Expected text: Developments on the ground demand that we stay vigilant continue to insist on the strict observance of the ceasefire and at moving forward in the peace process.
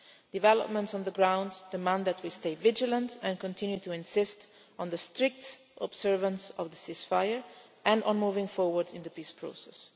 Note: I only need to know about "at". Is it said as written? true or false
false